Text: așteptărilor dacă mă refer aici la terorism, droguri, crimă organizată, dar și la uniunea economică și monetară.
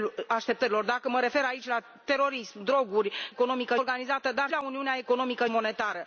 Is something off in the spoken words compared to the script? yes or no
yes